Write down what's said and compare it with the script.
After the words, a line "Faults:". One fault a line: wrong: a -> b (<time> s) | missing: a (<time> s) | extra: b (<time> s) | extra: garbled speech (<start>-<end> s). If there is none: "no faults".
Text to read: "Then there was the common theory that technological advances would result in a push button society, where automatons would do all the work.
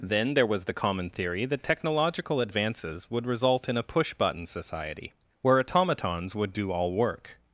"Then there was the common theory that technological advances would result in a push button society, where automatons would do all work.
Faults:
missing: the (6.9 s)